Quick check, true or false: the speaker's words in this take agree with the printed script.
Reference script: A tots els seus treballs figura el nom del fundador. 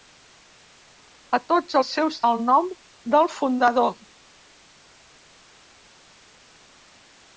false